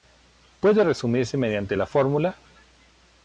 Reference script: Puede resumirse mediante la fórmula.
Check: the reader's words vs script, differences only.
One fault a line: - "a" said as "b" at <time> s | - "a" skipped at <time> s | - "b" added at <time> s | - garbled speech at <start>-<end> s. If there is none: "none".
none